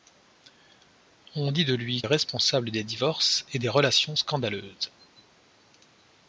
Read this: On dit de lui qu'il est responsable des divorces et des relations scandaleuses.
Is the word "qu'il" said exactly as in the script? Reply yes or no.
no